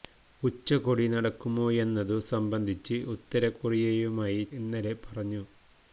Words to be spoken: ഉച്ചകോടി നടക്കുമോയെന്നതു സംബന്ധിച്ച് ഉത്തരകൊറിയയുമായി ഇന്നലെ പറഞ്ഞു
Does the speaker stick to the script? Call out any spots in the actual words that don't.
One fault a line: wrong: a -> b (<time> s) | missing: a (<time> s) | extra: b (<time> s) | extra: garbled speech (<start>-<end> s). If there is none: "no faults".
no faults